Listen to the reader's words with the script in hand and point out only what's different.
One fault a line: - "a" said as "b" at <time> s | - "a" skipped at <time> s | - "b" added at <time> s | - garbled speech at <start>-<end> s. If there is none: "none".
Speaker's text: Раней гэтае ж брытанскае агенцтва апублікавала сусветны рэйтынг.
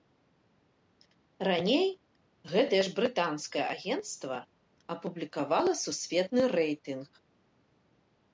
none